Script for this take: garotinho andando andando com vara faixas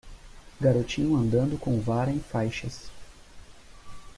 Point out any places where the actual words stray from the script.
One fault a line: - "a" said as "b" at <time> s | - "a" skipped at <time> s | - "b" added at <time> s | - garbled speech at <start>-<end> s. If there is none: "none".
- "andando" skipped at 1.6 s
- "em" added at 2.1 s